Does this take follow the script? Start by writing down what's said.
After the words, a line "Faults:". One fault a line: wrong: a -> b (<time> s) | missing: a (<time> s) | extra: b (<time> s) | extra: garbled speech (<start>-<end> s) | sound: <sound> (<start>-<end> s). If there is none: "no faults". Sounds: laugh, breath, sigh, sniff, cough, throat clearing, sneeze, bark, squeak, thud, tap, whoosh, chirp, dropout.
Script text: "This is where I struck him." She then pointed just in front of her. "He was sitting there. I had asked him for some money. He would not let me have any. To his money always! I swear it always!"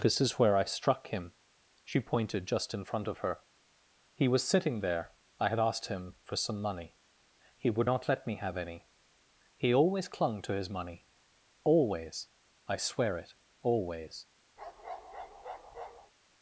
"This is where I struck him." She pointed just in front of her. "He was sitting there. I had asked him for some money. He would not let me have any. He always clung to his money always! I swear it always!"
Faults:
missing: then (2.0 s)
extra: He always clung (9.6 s)
sound: bark (14.6-16.1 s)